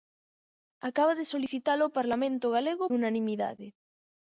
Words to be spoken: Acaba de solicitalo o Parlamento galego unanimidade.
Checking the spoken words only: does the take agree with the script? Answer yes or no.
yes